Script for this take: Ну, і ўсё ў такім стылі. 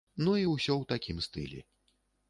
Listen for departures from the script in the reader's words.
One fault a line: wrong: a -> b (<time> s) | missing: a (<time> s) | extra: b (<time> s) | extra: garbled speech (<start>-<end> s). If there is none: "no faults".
no faults